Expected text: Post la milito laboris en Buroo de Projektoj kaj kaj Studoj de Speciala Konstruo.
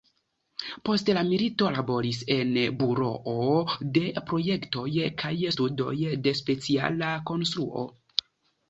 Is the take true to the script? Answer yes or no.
no